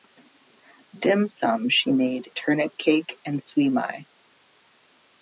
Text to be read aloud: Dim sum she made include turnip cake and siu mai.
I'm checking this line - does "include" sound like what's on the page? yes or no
no